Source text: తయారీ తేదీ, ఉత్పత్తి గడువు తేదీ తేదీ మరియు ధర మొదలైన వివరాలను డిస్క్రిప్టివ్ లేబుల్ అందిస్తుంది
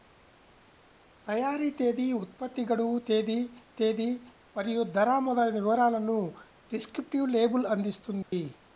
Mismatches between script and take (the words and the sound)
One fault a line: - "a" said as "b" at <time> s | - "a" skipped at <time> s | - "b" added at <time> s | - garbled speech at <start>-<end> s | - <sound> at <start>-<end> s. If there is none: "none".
- dropout at 8.2-8.3 s